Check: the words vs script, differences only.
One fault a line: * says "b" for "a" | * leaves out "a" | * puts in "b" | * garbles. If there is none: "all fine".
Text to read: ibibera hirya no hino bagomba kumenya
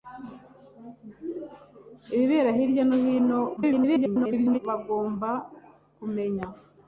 * garbles